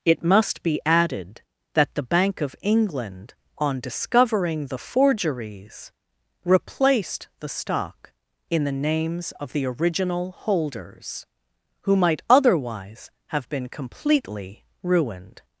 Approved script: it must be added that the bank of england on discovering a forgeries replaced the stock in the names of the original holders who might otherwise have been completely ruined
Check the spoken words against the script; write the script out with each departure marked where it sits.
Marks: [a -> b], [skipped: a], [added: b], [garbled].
it must be added that the bank of england on discovering [a -> the] forgeries replaced the stock in the names of the original holders who might otherwise have been completely ruined